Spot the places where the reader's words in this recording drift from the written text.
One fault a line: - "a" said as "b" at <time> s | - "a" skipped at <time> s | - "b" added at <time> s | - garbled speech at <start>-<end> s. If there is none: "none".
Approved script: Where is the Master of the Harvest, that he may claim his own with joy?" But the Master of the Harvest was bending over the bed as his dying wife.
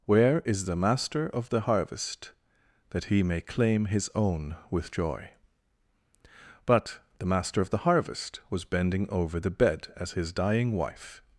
none